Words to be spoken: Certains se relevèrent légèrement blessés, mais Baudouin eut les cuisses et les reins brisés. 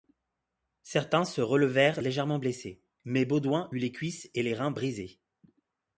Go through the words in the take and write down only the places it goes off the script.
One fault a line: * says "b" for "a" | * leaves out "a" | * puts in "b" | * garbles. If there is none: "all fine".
all fine